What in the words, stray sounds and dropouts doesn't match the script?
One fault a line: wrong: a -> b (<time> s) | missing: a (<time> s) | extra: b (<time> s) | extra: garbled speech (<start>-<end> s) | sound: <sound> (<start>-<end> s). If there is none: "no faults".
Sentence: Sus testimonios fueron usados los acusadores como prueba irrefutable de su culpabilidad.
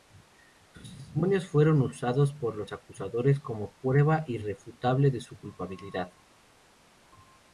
extra: por (2.3 s)